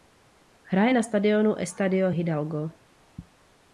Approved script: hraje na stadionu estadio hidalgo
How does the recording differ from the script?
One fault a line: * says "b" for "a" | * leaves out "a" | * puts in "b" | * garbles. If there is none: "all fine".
all fine